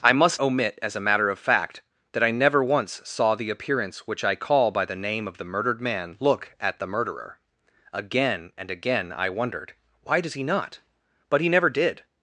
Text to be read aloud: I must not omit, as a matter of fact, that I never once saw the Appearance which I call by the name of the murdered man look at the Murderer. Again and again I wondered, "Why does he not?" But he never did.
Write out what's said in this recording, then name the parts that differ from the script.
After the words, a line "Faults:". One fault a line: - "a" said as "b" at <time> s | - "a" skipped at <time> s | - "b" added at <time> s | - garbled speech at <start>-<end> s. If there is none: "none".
I must omit, as a matter of fact, that I never once saw the Appearance which I call by the name of the murdered man look at the Murderer. Again and again I wondered, "Why does he not?" But he never did.
Faults:
- "not" skipped at 0.4 s